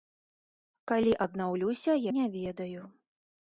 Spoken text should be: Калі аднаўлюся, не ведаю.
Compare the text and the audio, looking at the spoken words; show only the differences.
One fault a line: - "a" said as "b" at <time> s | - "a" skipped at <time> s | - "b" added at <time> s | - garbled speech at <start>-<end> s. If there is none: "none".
none